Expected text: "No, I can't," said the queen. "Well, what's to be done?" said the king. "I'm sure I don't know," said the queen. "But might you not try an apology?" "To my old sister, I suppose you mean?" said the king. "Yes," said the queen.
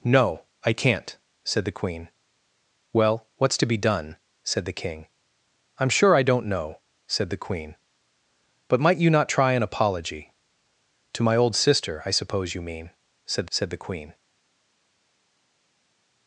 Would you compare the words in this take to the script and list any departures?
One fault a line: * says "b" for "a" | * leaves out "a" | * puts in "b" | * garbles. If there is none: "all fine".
* leaves out "the king Yes"